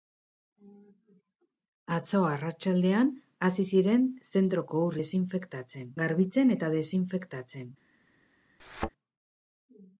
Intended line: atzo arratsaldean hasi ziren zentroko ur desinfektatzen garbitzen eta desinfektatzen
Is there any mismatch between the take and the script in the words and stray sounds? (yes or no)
yes